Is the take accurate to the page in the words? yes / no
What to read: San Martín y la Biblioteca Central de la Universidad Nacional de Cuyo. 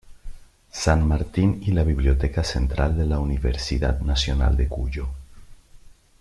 yes